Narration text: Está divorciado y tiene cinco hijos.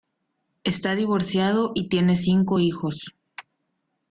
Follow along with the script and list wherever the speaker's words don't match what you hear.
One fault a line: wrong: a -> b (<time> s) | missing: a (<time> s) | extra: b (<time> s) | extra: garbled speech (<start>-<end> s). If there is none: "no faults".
no faults